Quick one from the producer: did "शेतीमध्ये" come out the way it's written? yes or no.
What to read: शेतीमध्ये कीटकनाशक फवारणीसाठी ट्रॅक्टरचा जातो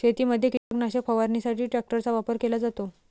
yes